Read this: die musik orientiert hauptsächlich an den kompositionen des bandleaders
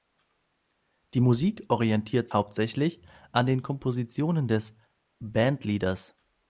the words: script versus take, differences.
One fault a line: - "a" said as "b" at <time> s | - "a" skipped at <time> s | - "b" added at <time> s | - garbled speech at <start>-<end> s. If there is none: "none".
none